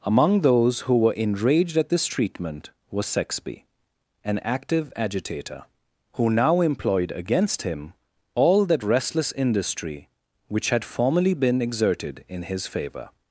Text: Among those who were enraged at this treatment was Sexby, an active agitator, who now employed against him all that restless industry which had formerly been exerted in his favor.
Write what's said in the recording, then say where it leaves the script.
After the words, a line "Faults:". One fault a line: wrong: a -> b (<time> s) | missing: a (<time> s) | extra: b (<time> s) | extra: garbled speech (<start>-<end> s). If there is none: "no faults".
Among those who were enraged at this treatment was Sexby, an active agitator, who now employed against him all that restless industry which had formerly been exerted in his favor.
Faults:
no faults